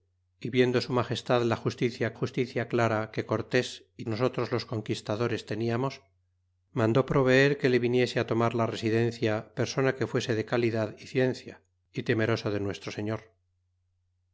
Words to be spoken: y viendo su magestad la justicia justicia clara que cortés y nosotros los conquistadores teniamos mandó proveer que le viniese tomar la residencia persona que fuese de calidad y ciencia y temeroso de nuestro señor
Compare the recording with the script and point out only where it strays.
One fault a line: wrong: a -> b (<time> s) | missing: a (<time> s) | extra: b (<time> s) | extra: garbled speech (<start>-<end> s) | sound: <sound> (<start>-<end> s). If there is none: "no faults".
no faults